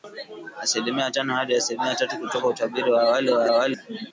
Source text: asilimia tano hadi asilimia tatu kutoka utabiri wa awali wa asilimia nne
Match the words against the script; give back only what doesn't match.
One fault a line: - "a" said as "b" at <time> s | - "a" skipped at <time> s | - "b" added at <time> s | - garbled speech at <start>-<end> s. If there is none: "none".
- "asilimia" said as "awali" at 3.5 s